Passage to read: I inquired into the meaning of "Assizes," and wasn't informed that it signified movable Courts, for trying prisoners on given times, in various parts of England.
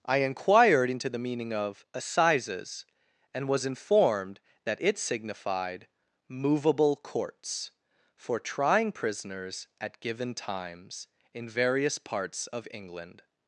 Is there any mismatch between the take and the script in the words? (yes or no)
yes